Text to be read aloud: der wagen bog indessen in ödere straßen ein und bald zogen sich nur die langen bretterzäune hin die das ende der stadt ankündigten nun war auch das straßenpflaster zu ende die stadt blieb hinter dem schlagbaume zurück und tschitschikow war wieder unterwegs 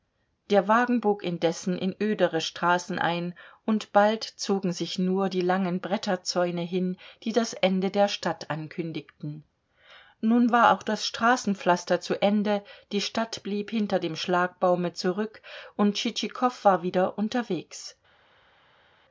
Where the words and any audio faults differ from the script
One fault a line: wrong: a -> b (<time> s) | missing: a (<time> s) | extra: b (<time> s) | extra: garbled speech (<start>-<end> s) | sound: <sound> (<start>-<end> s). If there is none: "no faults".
no faults